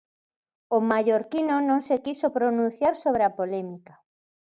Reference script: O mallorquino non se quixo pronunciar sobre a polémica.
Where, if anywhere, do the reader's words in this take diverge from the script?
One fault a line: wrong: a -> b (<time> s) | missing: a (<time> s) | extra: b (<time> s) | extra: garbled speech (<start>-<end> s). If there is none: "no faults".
no faults